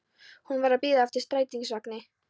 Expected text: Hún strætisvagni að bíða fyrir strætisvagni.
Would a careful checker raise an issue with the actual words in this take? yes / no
yes